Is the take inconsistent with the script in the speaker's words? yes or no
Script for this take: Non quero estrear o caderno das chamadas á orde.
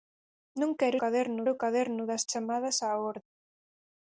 yes